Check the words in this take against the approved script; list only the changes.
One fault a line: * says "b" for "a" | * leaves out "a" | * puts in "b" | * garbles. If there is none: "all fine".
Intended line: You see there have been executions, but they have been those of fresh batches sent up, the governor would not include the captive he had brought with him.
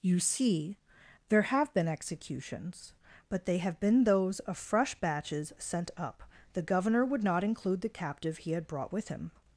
all fine